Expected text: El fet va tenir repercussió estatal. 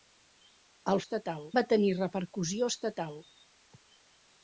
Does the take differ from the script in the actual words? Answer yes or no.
yes